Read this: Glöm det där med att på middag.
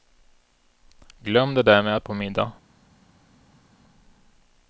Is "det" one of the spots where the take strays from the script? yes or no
no